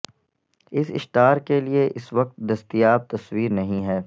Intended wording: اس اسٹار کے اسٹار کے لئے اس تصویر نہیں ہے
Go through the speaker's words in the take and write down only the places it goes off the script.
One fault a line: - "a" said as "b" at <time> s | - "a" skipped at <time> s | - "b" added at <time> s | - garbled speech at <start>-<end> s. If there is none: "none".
- "اسٹار کے لئے اس" said as "لئے اس وقت دستیاب" at 1.6 s